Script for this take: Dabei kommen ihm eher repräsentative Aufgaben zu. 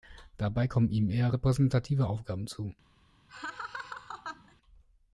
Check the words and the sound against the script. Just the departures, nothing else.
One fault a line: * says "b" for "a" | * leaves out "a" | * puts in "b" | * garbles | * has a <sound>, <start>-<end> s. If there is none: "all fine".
* has a laugh, 3.3-4.5 s